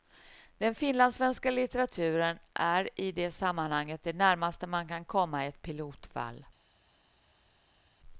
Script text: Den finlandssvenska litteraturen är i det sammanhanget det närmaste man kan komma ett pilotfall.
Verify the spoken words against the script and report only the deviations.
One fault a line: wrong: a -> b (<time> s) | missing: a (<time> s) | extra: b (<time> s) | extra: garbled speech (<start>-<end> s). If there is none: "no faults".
no faults